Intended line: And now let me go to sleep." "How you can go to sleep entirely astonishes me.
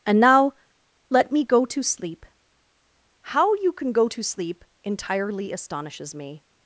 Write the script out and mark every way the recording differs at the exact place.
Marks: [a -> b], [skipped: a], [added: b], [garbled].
And now let me go to sleep." "How you can go to sleep entirely astonishes me.